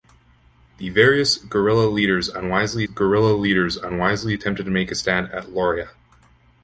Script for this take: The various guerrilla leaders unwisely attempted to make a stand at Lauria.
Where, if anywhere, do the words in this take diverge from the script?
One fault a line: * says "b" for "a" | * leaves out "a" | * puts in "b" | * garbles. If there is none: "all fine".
* puts in "guerrilla leaders unwisely"